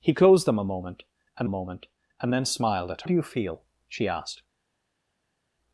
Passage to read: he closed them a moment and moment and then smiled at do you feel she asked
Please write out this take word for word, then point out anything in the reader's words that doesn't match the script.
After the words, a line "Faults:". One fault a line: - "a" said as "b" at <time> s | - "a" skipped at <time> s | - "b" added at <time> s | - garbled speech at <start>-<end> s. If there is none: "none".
he closed them a moment and moment and then smiled at do you feel she asked
Faults:
none